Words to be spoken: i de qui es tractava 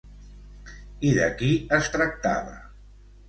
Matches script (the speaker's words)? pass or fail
pass